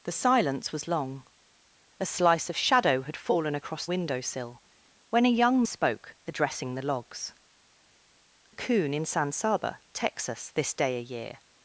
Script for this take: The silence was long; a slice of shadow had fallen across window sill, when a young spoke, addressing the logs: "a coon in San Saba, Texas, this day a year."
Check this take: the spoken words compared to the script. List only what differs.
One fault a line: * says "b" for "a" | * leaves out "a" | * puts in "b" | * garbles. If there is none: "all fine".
all fine